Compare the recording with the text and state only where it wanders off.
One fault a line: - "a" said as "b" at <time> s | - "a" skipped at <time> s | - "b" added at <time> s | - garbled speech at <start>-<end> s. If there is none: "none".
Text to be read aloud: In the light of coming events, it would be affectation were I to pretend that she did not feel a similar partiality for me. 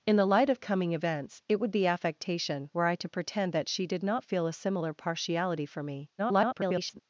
- garbled speech at 6.2-7.0 s